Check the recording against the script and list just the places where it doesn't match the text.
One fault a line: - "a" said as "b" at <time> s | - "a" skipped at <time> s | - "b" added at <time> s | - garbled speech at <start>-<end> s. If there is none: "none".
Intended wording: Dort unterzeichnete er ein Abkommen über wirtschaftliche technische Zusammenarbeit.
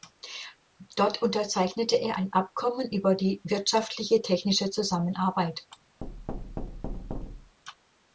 - "die" added at 3.1 s